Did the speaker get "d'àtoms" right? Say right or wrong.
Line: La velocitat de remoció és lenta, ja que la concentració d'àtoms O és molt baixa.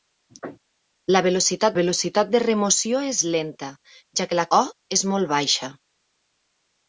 wrong